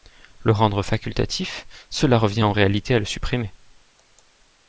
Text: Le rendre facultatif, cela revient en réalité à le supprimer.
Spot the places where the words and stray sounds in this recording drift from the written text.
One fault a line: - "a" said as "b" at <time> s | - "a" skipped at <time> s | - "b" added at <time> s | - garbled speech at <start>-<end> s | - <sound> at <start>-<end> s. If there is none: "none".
none